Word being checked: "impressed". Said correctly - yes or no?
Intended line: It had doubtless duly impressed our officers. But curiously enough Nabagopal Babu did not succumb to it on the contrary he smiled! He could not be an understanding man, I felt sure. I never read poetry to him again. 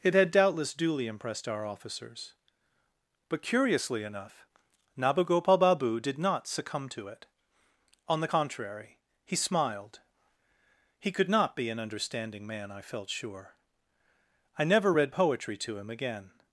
yes